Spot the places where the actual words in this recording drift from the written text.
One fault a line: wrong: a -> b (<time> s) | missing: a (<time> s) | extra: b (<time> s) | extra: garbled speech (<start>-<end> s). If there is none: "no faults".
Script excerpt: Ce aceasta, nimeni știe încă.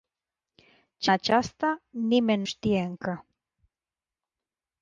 no faults